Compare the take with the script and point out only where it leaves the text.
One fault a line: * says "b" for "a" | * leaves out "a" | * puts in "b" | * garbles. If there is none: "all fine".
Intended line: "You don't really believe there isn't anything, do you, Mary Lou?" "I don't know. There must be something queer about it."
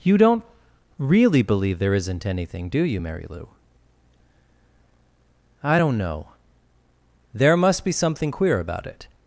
all fine